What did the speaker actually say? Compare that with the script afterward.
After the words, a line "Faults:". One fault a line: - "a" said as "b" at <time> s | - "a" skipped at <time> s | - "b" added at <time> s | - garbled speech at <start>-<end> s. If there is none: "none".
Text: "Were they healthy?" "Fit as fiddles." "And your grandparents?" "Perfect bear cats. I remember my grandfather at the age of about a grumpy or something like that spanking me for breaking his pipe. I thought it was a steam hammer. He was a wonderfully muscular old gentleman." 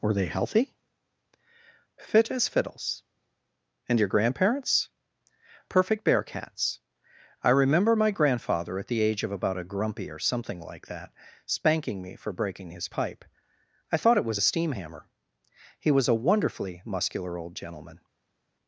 "Were they healthy?" "Fit as fiddles." "And your grandparents?" "Perfect bear cats. I remember my grandfather at the age of about a grumpy or something like that spanking me for breaking his pipe. I thought it was a steam hammer. He was a wonderfully muscular old gentleman."
Faults:
none